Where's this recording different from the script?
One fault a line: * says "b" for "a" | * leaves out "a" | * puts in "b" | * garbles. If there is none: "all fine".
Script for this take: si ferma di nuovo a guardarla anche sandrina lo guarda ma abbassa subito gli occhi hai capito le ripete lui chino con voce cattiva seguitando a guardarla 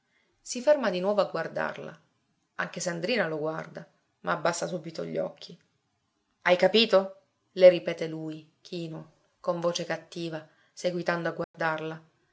all fine